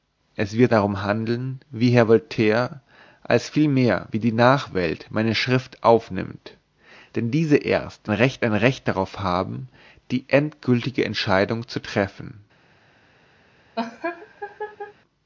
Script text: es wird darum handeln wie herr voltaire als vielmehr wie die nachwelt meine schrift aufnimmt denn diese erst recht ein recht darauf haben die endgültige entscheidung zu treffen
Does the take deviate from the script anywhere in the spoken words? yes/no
no